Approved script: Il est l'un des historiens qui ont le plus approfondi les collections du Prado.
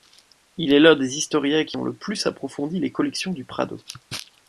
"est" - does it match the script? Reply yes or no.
yes